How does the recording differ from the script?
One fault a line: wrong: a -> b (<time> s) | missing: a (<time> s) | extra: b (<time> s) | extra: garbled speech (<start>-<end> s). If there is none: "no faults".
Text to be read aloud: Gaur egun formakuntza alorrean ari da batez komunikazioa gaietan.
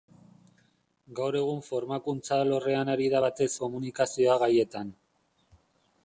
no faults